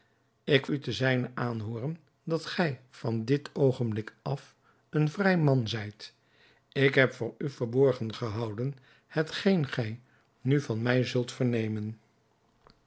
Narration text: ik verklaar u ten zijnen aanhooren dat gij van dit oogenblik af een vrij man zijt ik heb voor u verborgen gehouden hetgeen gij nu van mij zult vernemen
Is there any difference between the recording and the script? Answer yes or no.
yes